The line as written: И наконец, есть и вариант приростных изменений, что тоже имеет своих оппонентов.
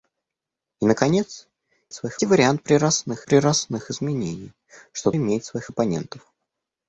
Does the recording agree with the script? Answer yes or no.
no